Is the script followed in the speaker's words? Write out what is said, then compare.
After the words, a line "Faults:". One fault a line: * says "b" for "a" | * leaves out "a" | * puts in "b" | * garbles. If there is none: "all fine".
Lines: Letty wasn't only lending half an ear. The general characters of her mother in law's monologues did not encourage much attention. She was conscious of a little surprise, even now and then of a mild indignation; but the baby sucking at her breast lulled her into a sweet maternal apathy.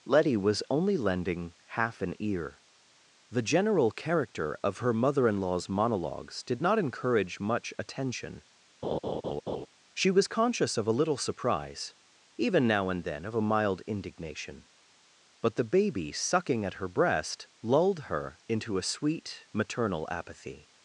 Letty was only lending half an ear. The general character of her mother in law's monologues did not encourage much attention. She was conscious of a little surprise, even now and then of a mild indignation; but the baby sucking at her breast lulled her into a sweet maternal apathy.
Faults:
* says "was" for "wasn't"
* says "character" for "characters"